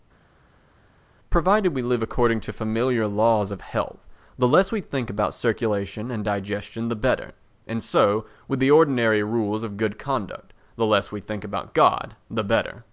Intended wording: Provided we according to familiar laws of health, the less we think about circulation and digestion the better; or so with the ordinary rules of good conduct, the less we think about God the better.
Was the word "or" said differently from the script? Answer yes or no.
yes